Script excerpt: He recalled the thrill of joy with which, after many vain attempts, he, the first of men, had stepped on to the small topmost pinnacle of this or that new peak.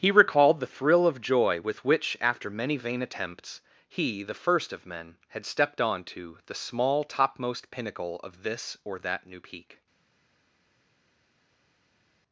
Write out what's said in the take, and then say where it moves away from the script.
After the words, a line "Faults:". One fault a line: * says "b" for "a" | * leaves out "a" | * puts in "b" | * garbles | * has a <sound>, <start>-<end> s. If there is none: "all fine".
He recalled the thrill of joy with which, after many vain attempts, he, the first of men, had stepped on to the small topmost pinnacle of this or that new peak.
Faults:
all fine